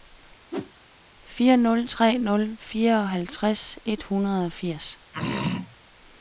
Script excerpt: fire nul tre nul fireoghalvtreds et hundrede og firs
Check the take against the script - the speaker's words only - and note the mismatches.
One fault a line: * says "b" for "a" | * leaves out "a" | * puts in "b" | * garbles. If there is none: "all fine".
all fine